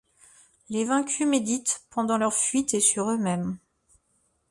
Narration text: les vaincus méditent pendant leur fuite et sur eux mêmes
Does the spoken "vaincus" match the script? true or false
true